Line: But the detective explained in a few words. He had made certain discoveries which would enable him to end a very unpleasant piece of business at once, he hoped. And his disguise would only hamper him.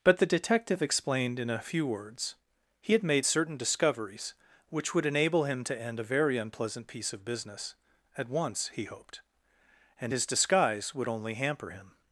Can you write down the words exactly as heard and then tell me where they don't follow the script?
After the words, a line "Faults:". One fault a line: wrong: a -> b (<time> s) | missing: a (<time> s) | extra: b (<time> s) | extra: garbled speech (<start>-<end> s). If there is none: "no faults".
But the detective explained in a few words. He had made certain discoveries which would enable him to end a very unpleasant piece of business at once, he hoped. And his disguise would only hamper him.
Faults:
no faults